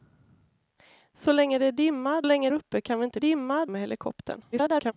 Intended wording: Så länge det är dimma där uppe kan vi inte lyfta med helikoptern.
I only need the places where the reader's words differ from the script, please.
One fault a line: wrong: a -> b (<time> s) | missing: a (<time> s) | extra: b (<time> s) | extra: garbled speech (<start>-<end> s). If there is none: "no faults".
wrong: där -> länge (2.2 s)
wrong: lyfta -> dimma (3.2 s)
extra: garbled speech (4.5-4.9 s)